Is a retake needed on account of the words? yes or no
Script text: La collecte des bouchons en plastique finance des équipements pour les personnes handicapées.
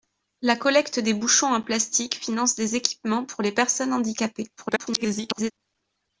yes